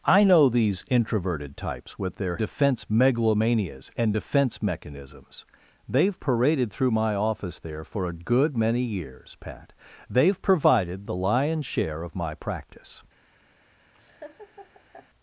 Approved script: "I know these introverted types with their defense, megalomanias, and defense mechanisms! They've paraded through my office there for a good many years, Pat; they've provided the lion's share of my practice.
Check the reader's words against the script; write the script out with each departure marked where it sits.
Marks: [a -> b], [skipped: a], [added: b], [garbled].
"I know these introverted types with their defense, megalomanias, and defense mechanisms! They've paraded through my office there for a good many years, Pat; they've provided the lion's share of my practice.